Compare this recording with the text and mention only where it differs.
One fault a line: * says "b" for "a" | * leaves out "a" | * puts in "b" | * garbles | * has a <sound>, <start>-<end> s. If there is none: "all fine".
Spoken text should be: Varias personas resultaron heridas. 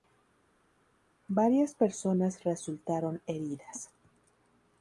all fine